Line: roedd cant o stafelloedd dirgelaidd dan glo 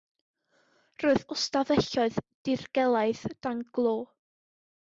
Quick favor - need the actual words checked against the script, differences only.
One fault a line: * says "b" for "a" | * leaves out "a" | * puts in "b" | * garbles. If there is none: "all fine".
* leaves out "cant"